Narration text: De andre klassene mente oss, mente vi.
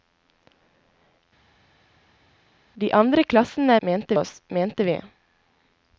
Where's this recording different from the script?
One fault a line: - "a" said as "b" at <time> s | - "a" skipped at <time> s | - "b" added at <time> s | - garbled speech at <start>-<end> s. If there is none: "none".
none